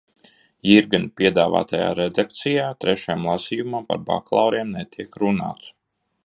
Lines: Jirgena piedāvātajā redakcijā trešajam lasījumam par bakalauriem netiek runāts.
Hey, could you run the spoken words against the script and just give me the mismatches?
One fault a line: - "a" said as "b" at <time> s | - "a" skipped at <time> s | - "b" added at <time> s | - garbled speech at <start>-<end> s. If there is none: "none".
none